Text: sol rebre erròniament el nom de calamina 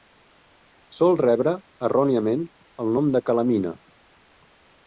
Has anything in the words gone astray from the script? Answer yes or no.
no